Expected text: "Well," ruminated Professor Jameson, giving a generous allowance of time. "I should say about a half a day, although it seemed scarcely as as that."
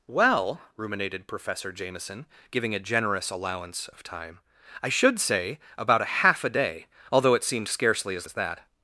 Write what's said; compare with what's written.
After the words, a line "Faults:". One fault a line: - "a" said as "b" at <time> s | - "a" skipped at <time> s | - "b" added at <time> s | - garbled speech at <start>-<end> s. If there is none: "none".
"Well," ruminated Professor Jameson, giving a generous allowance of time. "I should say about a half a day, although it seemed scarcely as as that."
Faults:
none